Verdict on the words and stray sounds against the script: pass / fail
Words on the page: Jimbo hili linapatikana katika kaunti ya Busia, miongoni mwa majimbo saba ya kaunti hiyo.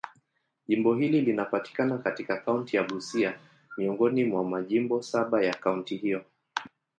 pass